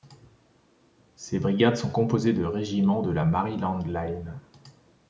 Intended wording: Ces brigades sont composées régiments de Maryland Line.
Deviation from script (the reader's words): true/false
true